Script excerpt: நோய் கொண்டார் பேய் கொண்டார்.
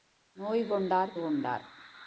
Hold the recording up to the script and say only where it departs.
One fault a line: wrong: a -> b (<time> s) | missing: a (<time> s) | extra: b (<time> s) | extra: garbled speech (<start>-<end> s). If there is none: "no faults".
missing: பேய் (1.1 s)